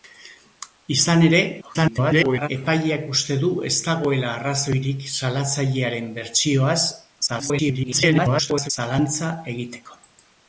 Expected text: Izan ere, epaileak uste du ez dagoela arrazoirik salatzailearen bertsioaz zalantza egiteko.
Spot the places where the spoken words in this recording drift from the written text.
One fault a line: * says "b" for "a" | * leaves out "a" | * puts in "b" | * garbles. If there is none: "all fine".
* garbles
* garbles